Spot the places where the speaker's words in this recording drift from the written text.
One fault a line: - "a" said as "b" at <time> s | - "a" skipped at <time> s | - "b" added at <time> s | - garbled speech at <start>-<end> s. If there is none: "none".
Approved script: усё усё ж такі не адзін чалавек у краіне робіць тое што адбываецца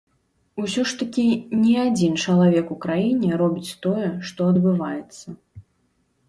- "усё" skipped at 0.8 s